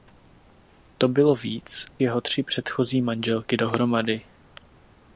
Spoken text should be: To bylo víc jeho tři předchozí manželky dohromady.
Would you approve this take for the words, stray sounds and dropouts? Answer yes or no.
yes